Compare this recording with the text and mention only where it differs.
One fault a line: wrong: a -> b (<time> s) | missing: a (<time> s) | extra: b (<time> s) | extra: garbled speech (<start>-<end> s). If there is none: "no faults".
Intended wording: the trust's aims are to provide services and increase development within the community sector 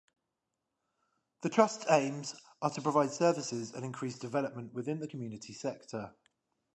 no faults